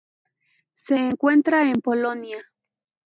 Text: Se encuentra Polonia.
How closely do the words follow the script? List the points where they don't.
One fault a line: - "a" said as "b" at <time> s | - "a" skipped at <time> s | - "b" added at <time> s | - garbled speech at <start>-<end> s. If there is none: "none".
- "en" added at 1.6 s